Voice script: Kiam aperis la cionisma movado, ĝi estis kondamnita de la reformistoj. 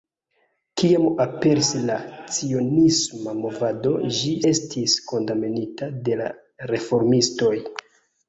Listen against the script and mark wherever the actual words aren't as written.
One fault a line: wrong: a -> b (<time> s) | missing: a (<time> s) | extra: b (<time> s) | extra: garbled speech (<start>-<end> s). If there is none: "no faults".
no faults